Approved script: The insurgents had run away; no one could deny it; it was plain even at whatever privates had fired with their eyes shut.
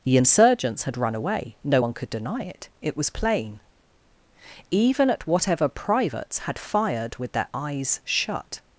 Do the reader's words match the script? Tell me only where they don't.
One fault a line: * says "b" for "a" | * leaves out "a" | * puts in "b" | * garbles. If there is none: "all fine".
all fine